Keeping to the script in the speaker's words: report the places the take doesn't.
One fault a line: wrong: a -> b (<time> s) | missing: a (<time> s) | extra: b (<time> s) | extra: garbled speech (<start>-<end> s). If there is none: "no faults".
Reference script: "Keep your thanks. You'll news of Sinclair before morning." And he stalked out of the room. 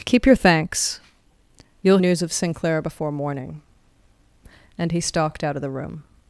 no faults